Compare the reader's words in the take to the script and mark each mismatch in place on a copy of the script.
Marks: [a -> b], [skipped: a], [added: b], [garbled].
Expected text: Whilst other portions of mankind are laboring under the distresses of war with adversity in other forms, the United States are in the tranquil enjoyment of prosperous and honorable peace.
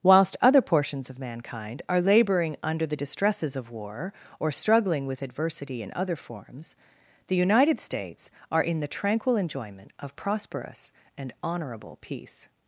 Whilst other portions of mankind are laboring under the distresses of war [added: or struggling] with adversity in other forms, the United States are in the tranquil enjoyment of prosperous and honorable peace.